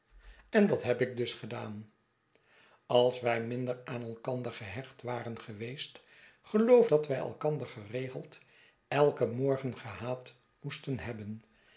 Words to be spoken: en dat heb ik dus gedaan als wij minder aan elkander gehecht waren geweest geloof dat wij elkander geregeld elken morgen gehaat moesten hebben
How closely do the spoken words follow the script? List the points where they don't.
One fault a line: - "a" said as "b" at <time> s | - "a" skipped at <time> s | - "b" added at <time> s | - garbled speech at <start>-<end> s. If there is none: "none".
none